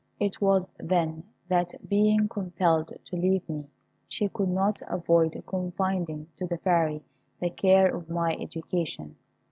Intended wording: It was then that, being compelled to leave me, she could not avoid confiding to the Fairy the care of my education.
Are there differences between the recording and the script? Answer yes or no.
no